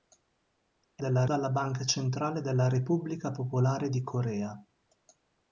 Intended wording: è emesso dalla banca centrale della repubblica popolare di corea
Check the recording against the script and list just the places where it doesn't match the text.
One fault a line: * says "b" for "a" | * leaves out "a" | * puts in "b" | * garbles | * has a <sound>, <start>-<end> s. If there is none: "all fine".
* says "della" for "emesso"